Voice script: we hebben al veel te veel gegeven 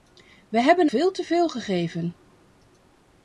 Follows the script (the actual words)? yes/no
no